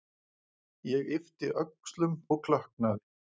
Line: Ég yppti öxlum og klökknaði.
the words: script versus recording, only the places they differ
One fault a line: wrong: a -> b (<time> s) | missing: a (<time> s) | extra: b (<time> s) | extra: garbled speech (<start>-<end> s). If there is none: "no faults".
no faults